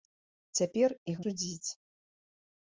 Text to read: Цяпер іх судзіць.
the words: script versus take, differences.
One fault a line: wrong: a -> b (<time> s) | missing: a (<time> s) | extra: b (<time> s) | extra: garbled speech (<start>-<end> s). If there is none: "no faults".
no faults